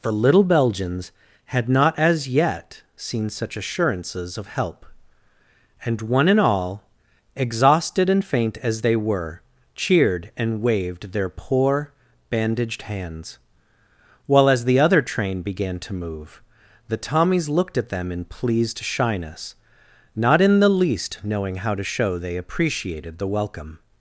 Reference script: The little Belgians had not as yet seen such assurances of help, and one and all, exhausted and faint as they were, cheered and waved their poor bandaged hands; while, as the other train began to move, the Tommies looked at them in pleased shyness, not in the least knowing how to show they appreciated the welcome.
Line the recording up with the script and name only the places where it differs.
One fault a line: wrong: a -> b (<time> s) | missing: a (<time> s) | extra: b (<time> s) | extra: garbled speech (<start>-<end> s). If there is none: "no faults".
no faults